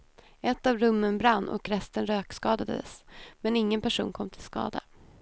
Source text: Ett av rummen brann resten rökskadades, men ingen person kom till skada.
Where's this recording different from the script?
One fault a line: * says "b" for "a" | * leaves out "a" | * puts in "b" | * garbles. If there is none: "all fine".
* puts in "och"